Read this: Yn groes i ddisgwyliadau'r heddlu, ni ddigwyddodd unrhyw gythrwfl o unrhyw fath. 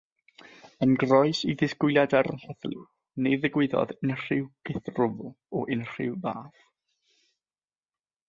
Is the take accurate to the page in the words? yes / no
yes